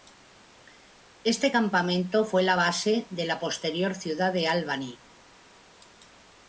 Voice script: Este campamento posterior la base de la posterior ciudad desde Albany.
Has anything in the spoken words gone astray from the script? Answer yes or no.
yes